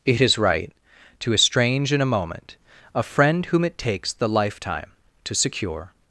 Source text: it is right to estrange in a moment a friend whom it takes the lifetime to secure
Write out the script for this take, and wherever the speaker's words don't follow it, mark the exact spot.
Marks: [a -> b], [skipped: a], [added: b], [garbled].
it is right to estrange in a moment a friend whom it takes the lifetime to secure